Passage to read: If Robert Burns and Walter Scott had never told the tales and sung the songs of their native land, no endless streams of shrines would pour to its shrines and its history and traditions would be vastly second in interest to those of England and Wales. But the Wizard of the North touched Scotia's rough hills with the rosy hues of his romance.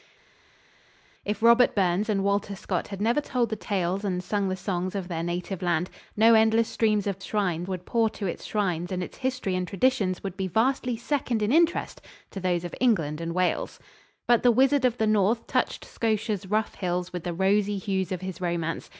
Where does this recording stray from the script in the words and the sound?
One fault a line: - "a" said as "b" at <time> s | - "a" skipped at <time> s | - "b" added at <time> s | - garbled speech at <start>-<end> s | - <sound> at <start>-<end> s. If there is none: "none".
none